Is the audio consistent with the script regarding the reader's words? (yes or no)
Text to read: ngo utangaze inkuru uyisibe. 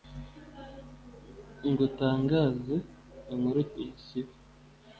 yes